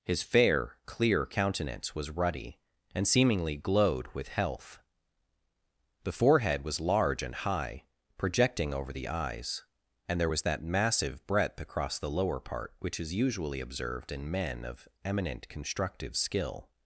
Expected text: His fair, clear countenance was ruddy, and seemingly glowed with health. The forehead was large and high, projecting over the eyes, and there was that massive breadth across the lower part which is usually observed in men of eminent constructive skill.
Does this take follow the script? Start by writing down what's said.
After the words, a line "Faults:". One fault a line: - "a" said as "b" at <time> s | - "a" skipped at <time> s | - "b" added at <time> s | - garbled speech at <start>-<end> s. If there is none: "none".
His fair, clear countenance was ruddy, and seemingly glowed with health. The forehead was large and high, projecting over the eyes, and there was that massive breadth across the lower part which is usually observed in men of eminent constructive skill.
Faults:
none